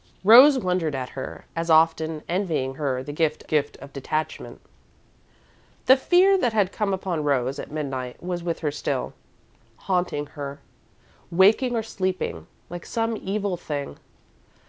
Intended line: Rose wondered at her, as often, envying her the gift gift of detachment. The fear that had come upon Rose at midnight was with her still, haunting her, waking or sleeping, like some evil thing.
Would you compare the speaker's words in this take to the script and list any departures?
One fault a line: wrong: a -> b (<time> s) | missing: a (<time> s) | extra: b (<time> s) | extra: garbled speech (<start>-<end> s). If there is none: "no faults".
no faults